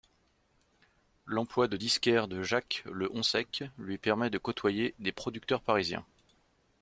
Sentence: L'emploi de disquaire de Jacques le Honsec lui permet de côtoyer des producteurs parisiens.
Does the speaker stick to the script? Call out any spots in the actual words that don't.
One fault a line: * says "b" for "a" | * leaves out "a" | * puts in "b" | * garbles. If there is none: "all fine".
all fine